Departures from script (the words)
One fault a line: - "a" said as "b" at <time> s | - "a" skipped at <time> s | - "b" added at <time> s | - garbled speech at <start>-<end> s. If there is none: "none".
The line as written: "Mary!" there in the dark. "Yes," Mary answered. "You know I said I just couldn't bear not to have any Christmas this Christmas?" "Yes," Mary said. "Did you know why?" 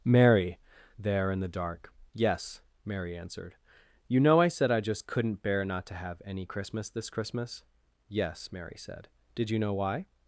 none